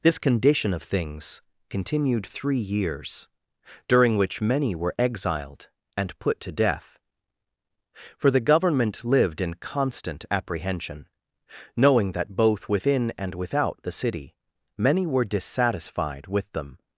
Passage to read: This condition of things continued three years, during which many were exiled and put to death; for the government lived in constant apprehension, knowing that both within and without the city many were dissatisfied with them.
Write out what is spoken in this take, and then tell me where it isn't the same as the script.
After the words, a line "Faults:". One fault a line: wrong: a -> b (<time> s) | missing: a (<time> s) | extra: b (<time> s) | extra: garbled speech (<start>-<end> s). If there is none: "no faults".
This condition of things continued three years, during which many were exiled and put to death; for the government lived in constant apprehension, knowing that both within and without the city many were dissatisfied with them.
Faults:
no faults